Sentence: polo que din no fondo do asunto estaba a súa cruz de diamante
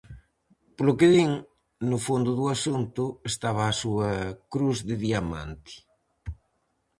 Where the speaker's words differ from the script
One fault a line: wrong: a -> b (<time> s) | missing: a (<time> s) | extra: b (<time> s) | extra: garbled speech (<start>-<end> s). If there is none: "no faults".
no faults